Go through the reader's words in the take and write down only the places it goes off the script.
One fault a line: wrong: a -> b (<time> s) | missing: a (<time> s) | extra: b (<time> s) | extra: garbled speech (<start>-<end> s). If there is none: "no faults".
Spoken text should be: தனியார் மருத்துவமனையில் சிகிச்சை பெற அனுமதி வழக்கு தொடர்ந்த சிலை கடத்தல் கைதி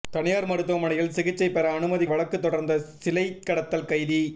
no faults